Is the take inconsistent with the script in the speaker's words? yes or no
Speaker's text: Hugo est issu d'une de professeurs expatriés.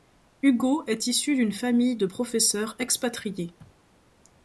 yes